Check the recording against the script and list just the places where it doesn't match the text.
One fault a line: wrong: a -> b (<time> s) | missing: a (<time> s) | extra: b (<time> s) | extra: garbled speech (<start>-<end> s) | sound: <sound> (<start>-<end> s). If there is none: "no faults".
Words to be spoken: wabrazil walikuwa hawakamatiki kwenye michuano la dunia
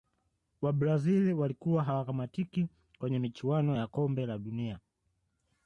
extra: ya kombe (3.8 s)